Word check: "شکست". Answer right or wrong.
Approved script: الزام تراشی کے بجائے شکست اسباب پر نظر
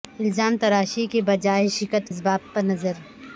right